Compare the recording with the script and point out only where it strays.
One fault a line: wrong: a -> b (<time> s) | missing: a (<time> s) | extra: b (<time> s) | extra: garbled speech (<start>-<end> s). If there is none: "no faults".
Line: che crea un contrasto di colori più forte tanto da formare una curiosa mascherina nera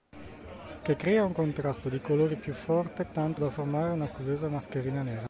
no faults